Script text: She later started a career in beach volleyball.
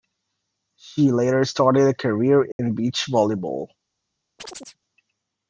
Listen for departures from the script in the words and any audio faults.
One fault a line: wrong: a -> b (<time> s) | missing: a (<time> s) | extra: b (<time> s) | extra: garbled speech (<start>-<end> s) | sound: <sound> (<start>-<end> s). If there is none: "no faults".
sound: dropout (2.5-2.6 s)
sound: chirp (4.4-4.8 s)